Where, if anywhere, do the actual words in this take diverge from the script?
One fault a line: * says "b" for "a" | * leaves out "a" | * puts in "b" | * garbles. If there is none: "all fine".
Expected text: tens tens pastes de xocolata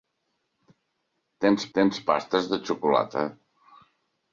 all fine